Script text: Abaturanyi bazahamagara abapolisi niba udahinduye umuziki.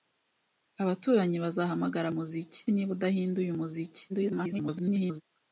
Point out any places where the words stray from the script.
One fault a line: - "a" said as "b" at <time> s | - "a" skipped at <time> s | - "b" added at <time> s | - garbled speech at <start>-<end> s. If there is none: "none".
- "abapolisi" said as "umuziki" at 2.1 s
- garbled speech at 4.1-5.2 s